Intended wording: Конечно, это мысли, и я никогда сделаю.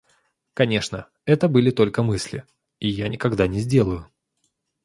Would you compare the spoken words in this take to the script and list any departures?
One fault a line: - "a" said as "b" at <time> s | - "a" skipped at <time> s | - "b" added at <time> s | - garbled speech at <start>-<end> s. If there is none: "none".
- "были только" added at 1.5 s
- "не" added at 3.5 s